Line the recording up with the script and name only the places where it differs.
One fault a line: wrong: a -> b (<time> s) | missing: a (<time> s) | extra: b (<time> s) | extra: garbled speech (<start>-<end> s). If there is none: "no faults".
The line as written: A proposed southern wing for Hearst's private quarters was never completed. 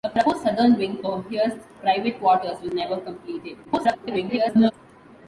extra: garbled speech (3.6-4.7 s)